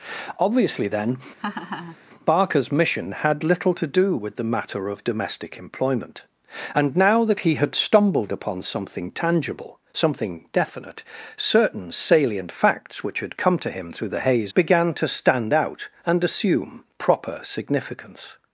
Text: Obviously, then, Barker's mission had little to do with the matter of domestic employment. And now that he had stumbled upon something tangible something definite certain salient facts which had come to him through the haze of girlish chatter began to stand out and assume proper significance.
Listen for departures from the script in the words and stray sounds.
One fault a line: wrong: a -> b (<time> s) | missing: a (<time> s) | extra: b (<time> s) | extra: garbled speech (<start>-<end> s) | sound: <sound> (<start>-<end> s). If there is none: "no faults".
sound: laugh (1.4-2.0 s)
missing: of girlish chatter (14.5 s)